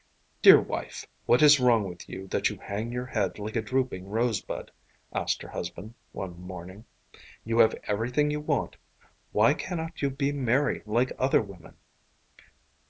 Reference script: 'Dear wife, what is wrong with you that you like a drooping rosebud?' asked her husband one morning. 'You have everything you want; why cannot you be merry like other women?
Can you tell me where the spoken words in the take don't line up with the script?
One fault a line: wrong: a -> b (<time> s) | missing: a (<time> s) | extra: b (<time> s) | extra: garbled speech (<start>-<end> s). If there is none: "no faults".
extra: hang your head (2.6 s)